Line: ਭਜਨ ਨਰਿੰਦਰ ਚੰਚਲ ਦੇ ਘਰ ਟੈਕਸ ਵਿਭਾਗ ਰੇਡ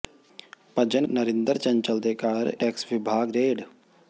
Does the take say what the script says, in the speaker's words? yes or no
yes